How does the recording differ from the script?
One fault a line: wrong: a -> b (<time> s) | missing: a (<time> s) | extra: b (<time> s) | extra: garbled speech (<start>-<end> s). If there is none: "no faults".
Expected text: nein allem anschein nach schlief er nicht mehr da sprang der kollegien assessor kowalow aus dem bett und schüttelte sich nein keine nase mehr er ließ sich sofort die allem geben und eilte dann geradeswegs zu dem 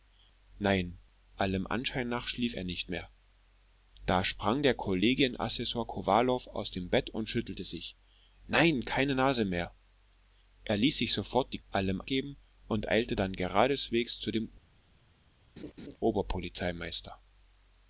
no faults